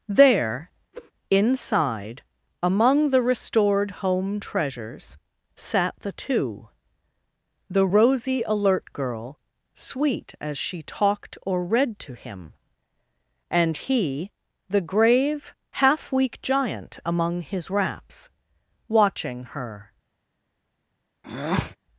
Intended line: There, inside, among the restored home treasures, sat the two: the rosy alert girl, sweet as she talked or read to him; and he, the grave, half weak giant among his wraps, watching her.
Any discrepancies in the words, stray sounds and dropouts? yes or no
yes